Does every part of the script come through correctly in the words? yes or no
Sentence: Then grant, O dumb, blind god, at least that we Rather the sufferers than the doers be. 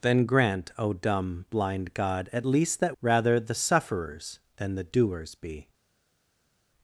no